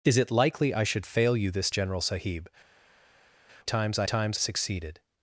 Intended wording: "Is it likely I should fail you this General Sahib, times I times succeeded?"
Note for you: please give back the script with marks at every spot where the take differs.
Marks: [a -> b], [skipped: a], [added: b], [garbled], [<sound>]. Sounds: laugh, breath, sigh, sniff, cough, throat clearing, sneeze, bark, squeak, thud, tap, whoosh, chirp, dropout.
"Is it likely I should fail you this General Sahib, times I times succeeded?"